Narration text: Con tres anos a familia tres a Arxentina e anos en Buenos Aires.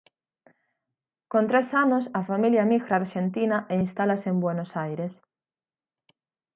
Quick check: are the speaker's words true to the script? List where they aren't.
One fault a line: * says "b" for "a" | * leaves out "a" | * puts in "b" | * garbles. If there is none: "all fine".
* says "emigra" for "tres"
* says "instálase" for "anos"